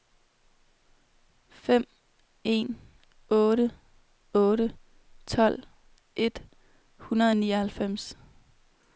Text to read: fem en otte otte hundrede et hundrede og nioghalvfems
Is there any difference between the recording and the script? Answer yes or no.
yes